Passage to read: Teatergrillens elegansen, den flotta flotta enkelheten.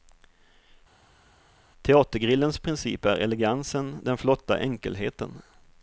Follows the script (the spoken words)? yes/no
no